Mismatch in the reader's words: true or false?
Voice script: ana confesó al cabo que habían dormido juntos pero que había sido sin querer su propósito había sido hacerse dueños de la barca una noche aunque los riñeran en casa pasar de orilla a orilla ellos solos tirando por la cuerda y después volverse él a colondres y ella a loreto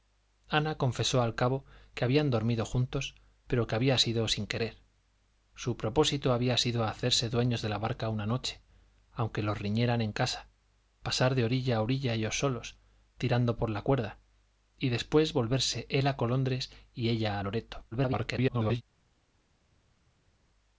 true